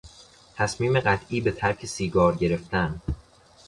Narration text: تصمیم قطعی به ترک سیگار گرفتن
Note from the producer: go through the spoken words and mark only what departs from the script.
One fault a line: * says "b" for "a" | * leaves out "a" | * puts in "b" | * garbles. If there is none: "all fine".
all fine